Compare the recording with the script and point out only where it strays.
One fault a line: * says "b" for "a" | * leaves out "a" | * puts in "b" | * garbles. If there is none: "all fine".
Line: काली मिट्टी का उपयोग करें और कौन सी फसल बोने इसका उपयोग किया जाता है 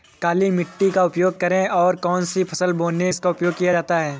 all fine